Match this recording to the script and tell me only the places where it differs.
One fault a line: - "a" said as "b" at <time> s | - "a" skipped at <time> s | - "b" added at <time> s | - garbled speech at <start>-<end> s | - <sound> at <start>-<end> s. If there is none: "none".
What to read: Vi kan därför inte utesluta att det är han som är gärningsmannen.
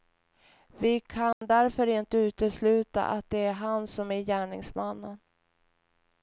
- dropout at 1.3-1.4 s